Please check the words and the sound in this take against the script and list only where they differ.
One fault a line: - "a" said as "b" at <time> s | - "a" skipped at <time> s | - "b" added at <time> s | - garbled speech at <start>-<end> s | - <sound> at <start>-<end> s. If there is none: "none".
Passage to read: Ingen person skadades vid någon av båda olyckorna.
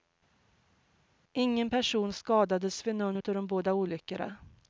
- "de" added at 3.2 s